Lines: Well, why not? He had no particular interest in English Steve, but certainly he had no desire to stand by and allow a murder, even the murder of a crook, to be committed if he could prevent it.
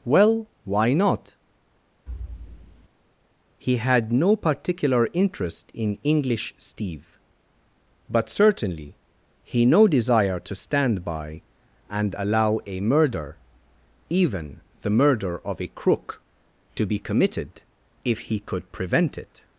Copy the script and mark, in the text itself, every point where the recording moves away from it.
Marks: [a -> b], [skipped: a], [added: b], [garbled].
Well, why not? He had no particular interest in English Steve, but certainly he [skipped: had] no desire to stand by and allow a murder, even the murder of a crook, to be committed if he could prevent it.